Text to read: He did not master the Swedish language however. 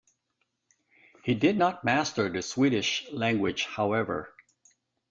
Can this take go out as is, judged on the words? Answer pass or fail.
pass